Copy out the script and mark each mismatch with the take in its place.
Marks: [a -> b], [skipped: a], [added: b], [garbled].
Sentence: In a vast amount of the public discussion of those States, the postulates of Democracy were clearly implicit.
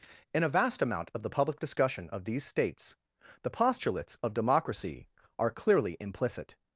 In a vast amount of the public discussion of [those -> these] States, the postulates of Democracy [were -> are] clearly implicit.